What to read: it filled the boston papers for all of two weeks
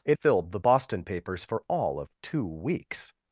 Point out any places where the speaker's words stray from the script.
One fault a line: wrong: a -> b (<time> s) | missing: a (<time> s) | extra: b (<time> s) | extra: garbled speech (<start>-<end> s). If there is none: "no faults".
no faults